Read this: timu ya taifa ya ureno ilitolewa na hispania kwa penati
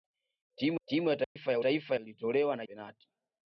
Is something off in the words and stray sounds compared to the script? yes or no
yes